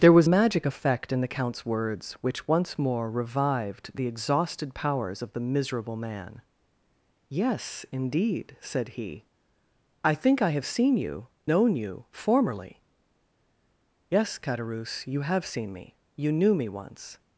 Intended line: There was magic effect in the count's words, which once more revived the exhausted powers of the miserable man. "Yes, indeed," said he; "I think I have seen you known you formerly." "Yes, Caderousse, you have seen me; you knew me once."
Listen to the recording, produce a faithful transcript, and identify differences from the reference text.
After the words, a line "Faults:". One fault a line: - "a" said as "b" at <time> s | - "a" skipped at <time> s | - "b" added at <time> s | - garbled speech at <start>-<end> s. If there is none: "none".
There was magic effect in the count's words, which once more revived the exhausted powers of the miserable man. "Yes, indeed," said he; "I think I have seen you known you formerly." "Yes, Caderousse, you have seen me; you knew me once."
Faults:
none